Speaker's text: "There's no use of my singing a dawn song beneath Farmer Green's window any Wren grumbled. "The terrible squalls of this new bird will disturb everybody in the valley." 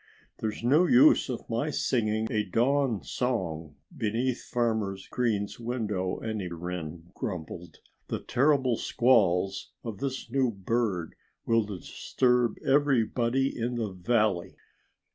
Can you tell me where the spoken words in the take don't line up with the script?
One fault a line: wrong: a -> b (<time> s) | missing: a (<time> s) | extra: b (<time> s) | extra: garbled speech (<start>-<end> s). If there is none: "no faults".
no faults